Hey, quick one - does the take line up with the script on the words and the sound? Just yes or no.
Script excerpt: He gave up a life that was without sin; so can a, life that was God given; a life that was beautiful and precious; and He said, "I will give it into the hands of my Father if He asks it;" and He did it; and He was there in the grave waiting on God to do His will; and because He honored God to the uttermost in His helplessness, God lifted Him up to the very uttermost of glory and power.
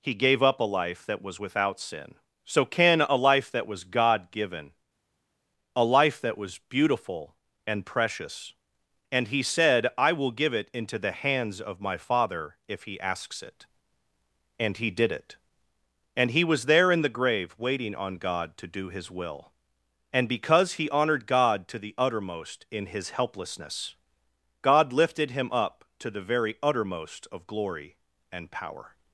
yes